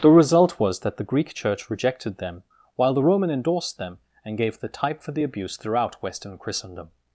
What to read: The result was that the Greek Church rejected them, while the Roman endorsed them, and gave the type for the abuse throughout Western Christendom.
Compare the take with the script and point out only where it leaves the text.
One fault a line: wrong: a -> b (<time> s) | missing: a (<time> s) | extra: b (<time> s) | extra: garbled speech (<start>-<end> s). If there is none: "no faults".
no faults